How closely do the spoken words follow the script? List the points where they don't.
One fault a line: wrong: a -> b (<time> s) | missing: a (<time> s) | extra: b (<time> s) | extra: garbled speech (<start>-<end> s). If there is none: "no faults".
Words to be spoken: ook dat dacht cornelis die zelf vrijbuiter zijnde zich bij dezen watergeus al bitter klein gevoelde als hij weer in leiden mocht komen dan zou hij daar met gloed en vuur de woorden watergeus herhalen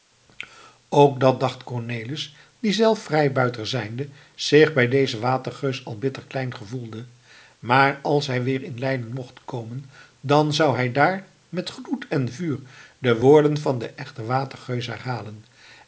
extra: maar (7.6 s)
extra: van den echten (13.6 s)